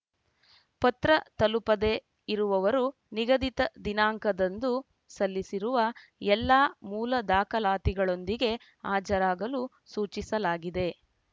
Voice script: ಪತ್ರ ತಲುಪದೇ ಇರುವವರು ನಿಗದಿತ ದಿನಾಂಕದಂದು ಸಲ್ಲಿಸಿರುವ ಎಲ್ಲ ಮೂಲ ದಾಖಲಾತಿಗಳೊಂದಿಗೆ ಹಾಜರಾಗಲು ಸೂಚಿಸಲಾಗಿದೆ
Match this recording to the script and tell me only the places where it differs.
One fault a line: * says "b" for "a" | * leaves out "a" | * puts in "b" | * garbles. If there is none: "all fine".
all fine